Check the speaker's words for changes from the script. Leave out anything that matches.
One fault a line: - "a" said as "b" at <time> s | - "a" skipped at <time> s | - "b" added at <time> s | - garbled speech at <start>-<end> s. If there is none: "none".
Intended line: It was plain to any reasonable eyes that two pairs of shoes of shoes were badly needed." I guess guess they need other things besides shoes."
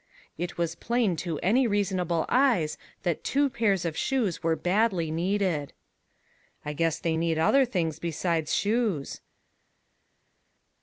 - "of shoes" skipped at 4.4 s
- "guess" skipped at 7.0 s